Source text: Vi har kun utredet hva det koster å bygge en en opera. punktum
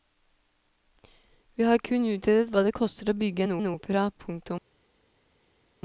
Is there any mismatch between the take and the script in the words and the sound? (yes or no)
no